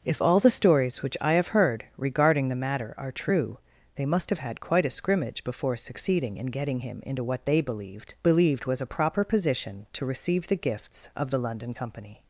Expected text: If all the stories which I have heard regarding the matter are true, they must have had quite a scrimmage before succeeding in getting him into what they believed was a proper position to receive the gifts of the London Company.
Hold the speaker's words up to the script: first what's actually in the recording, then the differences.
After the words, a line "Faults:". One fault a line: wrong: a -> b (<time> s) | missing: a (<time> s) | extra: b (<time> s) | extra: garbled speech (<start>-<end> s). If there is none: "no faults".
If all the stories which I have heard regarding the matter are true, they must have had quite a scrimmage before succeeding in getting him into what they believed believed was a proper position to receive the gifts of the London Company.
Faults:
extra: believed (8.2 s)